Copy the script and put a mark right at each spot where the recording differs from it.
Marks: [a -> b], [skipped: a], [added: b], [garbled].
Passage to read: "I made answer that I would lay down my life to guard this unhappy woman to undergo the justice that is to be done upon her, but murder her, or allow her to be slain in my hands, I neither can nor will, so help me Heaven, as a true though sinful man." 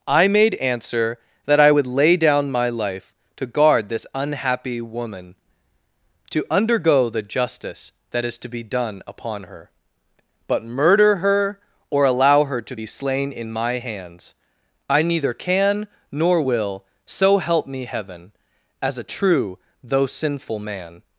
"I made answer that I would lay down my life to guard this unhappy woman to undergo the justice that is to be done upon her, but murder her, or allow her to be slain in my hands, I neither can nor will, so help me Heaven, as a true though sinful man."